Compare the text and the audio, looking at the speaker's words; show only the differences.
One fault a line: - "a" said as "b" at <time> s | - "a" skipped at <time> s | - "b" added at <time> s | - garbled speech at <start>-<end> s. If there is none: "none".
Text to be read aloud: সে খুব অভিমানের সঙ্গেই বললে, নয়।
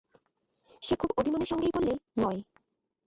none